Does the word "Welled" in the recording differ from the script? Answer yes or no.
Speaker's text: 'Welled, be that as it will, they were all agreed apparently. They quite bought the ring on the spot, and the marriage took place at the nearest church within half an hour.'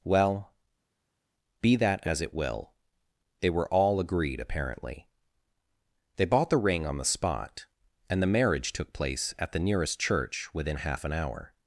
yes